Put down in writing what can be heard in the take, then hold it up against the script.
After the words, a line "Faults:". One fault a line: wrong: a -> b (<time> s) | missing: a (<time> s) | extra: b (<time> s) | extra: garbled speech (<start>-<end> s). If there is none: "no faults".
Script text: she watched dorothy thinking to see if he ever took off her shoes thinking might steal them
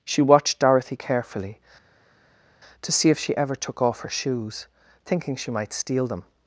she watched dorothy carefully to see if she ever took off her shoes thinking she might steal them
Faults:
wrong: thinking -> carefully (0.9 s)
wrong: he -> she (3.2 s)
extra: she (5.4 s)